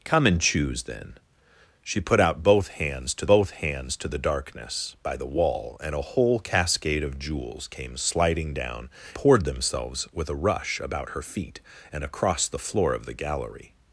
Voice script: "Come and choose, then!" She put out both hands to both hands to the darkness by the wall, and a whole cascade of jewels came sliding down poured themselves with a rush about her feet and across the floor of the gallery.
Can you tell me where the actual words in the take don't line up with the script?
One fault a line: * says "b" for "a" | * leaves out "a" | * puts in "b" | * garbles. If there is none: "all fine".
all fine